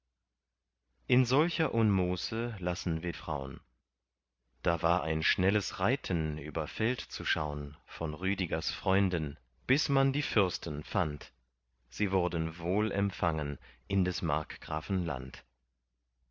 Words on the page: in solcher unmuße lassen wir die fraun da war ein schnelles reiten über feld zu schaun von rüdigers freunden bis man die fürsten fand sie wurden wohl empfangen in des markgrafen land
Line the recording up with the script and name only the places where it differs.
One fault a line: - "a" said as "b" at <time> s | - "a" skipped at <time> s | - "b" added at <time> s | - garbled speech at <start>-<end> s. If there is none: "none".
- "die" skipped at 3.1 s